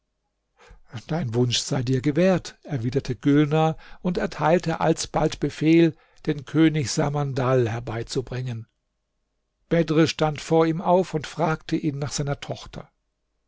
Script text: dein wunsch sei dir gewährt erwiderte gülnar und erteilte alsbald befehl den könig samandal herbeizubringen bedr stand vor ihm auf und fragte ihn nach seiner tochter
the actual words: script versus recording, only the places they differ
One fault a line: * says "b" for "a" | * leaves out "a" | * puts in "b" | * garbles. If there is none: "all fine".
all fine